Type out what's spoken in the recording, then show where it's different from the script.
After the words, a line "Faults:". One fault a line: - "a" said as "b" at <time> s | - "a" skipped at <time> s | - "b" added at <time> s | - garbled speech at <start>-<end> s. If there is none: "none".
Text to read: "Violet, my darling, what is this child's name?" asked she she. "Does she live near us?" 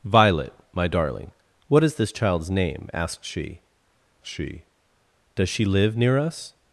"Violet, my darling, what is this child's name?" asked she she. "Does she live near us?"
Faults:
none